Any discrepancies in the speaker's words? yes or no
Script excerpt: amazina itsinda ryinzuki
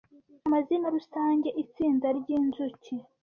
yes